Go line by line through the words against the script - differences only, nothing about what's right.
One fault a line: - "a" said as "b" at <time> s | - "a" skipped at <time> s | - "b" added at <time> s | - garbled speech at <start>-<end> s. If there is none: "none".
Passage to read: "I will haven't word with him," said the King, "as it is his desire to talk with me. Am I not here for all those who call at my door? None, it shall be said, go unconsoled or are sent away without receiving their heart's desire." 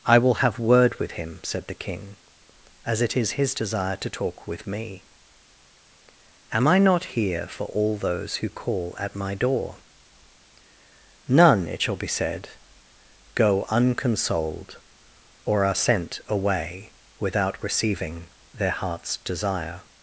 - "haven't" said as "have" at 0.3 s